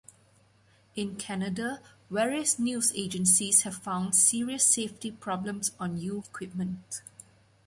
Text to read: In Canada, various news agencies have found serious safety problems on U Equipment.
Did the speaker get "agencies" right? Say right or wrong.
right